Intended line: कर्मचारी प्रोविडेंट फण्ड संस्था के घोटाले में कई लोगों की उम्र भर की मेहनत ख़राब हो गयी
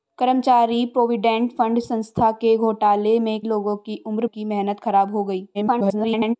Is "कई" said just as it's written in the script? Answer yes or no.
no